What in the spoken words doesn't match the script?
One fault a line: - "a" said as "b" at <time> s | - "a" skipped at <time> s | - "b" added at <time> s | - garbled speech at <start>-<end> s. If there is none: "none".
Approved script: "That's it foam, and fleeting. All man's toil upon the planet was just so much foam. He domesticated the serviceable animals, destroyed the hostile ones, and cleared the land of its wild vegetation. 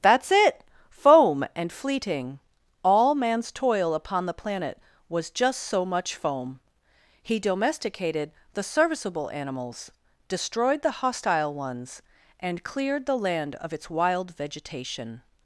none